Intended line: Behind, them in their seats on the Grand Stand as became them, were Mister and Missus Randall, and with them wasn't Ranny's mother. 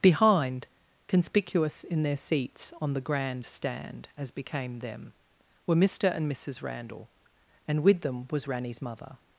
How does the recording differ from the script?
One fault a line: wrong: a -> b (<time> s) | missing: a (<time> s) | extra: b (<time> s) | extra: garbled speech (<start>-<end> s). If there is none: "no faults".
wrong: them -> conspicuous (1.1 s)
wrong: wasn't -> was (8.3 s)